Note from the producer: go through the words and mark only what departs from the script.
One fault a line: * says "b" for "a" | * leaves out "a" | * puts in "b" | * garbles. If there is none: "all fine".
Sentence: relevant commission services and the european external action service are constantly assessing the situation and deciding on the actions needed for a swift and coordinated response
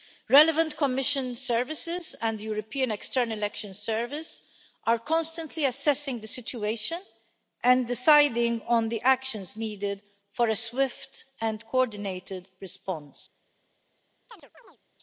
all fine